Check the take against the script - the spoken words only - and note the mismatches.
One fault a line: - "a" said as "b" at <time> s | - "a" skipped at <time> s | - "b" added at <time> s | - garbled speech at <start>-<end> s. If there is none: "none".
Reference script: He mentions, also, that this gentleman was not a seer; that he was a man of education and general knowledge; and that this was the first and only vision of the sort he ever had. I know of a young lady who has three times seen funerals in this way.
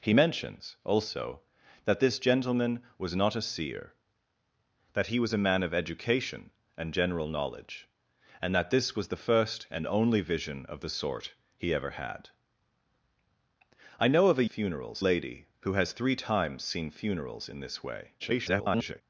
- "young" said as "funerals" at 14.5 s
- garbled speech at 18.2-19.0 s